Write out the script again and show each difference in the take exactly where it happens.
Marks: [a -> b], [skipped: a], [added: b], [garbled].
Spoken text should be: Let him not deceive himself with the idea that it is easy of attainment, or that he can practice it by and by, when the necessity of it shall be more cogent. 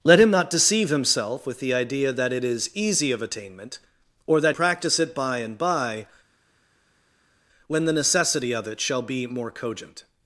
Let him not deceive himself with the idea that it is easy of attainment, or that [skipped: he can] practice it by and by, when the necessity of it shall be more cogent.